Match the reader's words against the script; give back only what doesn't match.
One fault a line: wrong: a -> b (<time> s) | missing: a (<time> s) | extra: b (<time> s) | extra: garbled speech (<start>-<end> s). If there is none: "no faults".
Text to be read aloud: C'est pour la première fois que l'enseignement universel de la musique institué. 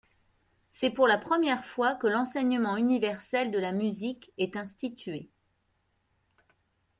extra: est (4.4 s)